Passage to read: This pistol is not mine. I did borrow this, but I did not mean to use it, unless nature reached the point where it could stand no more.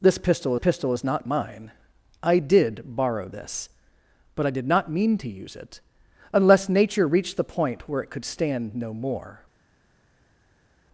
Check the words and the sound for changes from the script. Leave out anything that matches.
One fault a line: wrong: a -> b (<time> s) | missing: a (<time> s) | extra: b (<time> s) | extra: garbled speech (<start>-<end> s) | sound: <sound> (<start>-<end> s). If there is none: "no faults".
extra: pistol (0.6 s)